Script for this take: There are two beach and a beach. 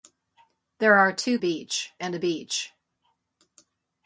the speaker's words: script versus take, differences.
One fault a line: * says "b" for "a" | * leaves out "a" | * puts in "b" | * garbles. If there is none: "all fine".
all fine